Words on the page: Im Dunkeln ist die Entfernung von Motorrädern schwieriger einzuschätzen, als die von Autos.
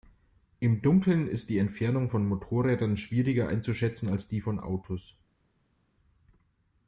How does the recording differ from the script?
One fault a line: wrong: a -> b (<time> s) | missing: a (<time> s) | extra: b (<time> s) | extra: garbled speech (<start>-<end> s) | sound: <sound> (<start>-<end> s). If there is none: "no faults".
no faults